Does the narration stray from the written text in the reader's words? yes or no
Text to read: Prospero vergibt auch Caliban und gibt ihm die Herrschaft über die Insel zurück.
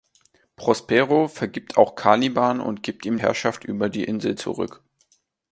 yes